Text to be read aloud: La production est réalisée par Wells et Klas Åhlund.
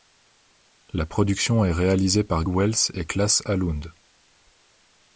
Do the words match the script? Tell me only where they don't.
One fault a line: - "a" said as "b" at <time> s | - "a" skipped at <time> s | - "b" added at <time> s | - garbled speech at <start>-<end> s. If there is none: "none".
none